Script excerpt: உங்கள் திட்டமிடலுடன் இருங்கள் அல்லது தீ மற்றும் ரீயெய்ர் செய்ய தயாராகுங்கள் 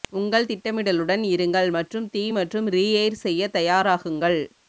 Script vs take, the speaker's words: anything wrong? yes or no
yes